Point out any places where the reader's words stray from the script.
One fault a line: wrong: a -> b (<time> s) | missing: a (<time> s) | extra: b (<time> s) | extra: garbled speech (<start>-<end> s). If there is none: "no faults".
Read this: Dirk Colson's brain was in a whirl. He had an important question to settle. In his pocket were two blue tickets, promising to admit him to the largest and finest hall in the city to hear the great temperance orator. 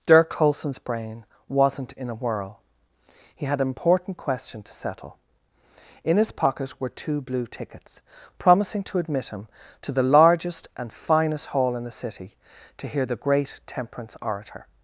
wrong: was -> wasn't (1.5 s)